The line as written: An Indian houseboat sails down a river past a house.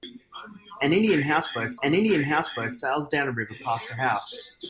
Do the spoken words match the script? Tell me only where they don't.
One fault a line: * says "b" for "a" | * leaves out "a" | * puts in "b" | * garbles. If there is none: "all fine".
* puts in "an Indian houseboat"